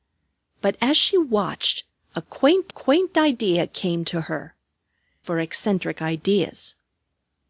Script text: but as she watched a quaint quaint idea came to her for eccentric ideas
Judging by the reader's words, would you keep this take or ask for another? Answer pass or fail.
pass